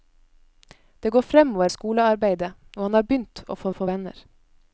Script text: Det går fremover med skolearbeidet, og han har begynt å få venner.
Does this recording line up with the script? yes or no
no